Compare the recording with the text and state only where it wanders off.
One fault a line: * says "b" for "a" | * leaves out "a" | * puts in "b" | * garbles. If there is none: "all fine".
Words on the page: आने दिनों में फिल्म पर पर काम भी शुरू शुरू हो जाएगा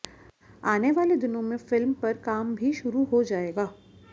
* puts in "वाले"
* leaves out "पर"
* leaves out "शुरू"